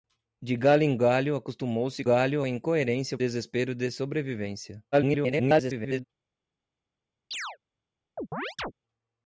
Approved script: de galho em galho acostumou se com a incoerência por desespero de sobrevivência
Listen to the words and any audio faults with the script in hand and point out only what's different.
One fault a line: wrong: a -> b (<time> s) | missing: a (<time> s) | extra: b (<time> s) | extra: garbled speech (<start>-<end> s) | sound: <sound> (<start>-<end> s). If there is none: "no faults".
wrong: com -> galho (2.0 s)
missing: por (3.2 s)
extra: garbled speech (4.9-6.0 s)
sound: chirp (7.3-7.6 s)
sound: chirp (8.2-8.7 s)